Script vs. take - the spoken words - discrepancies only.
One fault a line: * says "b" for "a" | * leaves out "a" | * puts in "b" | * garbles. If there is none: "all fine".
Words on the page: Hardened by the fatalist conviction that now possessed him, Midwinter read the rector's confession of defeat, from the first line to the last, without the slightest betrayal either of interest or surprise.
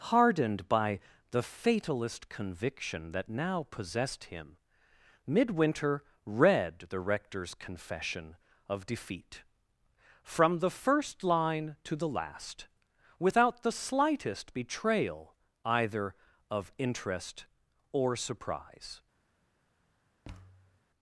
all fine